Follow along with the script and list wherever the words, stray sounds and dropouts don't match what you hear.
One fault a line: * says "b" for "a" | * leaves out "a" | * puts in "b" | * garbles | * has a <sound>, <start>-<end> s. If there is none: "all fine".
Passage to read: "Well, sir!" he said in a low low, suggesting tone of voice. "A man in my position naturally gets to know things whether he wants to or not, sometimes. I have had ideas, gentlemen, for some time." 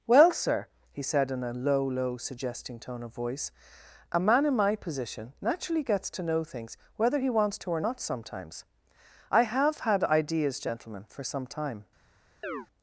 * has a chirp, 12.4-12.7 s